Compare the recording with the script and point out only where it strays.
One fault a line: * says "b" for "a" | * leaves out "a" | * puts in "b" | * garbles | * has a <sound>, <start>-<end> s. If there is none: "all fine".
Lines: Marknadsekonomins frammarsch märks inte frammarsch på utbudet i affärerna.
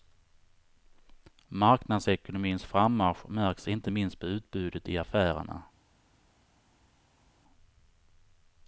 * says "minst" for "frammarsch"